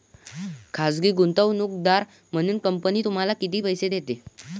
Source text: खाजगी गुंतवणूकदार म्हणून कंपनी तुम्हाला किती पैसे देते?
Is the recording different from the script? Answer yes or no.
no